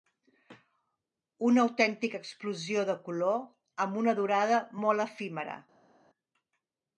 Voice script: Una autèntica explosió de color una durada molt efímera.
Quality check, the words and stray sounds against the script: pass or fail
fail